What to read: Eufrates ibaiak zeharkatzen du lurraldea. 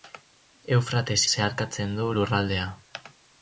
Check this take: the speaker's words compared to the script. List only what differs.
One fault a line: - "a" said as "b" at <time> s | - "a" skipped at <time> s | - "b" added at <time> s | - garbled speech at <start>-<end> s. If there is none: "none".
- "ibaiak" skipped at 1.2 s